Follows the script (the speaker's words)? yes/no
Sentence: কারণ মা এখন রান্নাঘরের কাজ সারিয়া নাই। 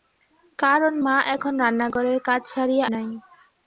yes